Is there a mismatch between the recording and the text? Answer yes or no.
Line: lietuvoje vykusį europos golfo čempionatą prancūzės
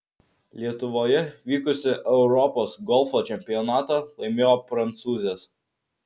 yes